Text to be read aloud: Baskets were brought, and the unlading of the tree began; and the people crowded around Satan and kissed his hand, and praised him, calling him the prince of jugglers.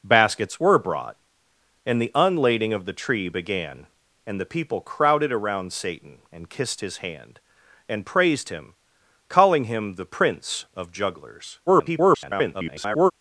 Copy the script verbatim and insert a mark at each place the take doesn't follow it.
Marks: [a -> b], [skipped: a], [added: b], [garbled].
Baskets were brought, and the unlading of the tree began; and the people crowded around Satan and kissed his hand, and praised him, calling him the prince of jugglers. [garbled]